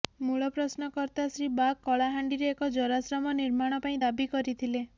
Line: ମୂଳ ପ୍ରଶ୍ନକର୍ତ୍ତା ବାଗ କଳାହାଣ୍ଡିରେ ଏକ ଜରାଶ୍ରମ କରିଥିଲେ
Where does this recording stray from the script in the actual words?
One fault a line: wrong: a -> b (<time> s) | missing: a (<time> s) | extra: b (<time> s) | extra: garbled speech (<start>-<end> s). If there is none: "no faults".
extra: ଶ୍ରୀ (1.3 s)
extra: ନିର୍ମାଣ ପାଇଁ ଦାବି (3.4 s)